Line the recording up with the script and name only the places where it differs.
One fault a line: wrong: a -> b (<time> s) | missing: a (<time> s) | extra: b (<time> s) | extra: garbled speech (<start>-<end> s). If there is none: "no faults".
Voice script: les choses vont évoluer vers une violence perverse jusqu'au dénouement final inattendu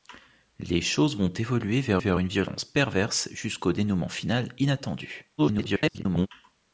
extra: vers (2.0 s)
extra: garbled speech (5.4-6.3 s)